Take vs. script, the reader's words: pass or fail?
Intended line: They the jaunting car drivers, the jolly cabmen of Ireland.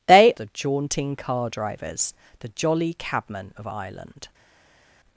pass